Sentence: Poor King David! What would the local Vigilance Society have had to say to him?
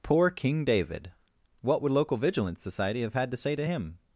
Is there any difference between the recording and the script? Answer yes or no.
yes